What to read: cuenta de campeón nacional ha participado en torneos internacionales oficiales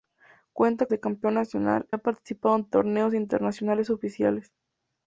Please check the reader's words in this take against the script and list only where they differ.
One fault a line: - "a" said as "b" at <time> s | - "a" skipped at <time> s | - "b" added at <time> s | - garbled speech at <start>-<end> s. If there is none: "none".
none